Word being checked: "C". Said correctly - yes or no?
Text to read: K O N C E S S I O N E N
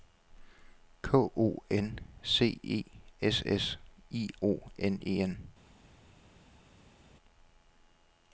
yes